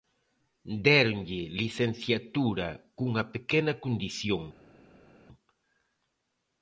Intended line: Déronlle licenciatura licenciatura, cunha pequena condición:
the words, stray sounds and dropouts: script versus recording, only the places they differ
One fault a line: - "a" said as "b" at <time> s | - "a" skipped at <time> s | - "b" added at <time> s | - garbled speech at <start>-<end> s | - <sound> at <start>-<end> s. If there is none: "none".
- "licenciatura" skipped at 2.7 s